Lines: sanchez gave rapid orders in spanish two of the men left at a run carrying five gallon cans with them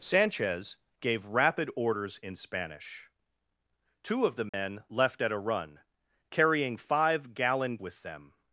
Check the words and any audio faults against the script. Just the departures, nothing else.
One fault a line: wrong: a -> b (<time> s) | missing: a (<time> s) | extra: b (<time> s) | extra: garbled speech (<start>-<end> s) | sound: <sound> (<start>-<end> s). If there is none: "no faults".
sound: dropout (4.5-4.5 s)
missing: cans (7.8 s)